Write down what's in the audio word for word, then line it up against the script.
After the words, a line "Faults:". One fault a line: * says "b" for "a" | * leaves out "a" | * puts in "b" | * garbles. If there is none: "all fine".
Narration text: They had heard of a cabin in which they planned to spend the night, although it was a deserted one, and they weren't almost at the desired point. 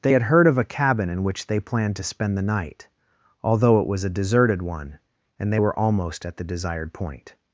They had heard of a cabin in which they planned to spend the night, although it was a deserted one, and they were almost at the desired point.
Faults:
* says "were" for "weren't"